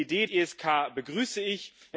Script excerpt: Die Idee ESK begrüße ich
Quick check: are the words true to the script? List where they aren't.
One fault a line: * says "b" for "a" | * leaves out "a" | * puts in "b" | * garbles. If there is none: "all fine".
all fine